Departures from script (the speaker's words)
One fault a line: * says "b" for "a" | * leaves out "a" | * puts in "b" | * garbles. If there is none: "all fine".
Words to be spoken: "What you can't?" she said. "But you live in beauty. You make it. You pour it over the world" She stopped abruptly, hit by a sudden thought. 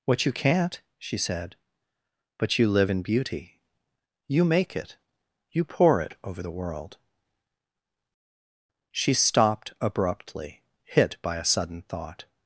all fine